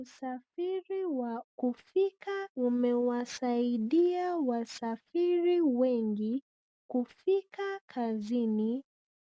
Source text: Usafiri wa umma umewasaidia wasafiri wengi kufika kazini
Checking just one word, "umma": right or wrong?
wrong